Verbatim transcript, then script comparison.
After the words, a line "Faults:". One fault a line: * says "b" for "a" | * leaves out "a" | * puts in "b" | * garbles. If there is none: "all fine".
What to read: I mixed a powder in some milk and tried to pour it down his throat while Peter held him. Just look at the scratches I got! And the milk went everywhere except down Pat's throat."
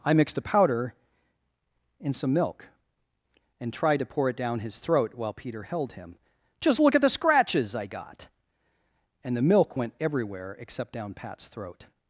I mixed a powder in some milk and tried to pour it down his throat while Peter held him. Just look at the scratches I got! And the milk went everywhere except down Pat's throat."
Faults:
all fine